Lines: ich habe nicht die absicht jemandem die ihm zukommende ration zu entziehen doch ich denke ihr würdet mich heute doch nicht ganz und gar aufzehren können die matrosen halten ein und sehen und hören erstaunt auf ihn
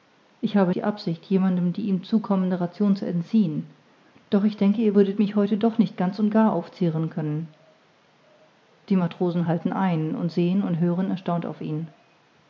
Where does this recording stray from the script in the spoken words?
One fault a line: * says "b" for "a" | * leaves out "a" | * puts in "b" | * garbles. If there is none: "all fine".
* leaves out "nicht"